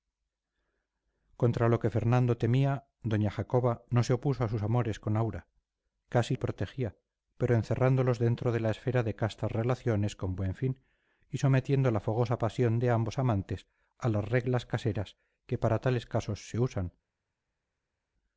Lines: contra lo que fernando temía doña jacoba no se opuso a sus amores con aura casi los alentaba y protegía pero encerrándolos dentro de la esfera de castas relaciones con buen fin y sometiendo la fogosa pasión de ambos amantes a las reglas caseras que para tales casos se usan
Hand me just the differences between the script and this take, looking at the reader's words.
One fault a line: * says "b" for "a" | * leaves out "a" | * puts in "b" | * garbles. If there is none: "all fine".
* leaves out "los alentaba"